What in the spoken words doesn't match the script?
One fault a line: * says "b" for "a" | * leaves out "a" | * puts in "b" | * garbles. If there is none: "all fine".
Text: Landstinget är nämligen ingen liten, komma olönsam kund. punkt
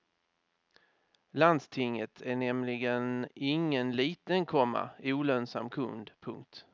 all fine